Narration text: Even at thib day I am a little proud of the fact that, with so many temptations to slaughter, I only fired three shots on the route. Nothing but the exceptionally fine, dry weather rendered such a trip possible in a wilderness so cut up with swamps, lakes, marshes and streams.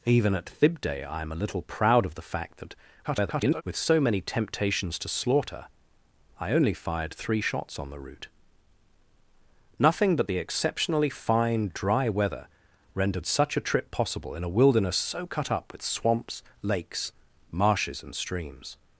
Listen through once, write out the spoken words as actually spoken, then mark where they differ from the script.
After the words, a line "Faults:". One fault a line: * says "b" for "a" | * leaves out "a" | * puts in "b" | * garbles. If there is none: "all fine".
Even at thib day I am a little proud of the fact that, [garbled] with so many temptations to slaughter, I only fired three shots on the route. Nothing but the exceptionally fine, dry weather rendered such a trip possible in a wilderness so cut up with swamps, lakes, marshes and streams.
Faults:
* garbles